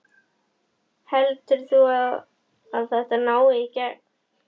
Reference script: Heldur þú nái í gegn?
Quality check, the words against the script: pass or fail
fail